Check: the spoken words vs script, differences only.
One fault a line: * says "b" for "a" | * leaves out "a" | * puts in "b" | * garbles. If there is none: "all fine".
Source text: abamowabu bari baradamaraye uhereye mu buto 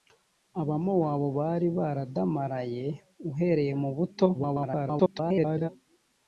* garbles